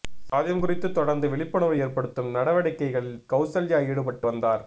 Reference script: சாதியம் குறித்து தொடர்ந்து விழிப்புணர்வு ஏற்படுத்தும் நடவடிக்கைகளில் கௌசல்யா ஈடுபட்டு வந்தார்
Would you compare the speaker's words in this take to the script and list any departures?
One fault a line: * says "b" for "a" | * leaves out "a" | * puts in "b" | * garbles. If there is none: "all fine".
all fine